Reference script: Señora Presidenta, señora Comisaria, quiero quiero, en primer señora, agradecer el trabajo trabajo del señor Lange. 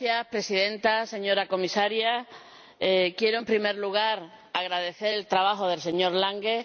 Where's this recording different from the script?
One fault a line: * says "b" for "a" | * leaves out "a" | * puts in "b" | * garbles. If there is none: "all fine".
* leaves out "quiero"
* says "lugar" for "señora"
* leaves out "trabajo"